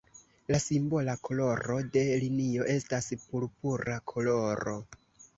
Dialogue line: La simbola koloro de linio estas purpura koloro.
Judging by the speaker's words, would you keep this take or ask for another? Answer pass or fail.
pass